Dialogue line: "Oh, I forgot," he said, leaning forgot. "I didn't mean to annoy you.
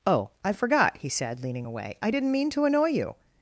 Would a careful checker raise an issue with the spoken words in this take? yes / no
yes